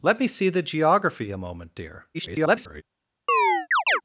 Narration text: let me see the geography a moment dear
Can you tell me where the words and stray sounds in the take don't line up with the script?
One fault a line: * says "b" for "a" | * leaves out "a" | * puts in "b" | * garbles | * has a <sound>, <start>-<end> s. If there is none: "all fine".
* garbles
* has a chirp, 3.3-4.0 s